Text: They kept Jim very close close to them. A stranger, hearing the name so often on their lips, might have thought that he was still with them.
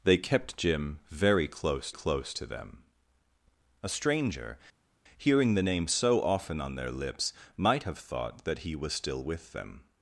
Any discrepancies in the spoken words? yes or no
no